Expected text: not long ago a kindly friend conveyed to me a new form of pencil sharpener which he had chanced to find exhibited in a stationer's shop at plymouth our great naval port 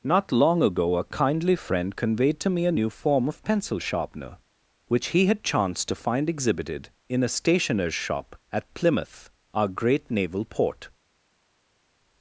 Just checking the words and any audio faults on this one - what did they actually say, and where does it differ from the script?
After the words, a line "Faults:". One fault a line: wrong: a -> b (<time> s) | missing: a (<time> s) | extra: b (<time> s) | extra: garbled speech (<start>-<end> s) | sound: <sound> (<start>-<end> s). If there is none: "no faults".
not long ago a kindly friend conveyed to me a new form of pencil sharpener which he had chanced to find exhibited in a stationer's shop at plymouth our great naval port
Faults:
no faults